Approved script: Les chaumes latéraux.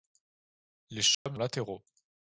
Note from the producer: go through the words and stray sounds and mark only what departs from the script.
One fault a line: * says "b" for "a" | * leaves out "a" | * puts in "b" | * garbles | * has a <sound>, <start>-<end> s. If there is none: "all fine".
* has a dropout, 1.1-1.3 s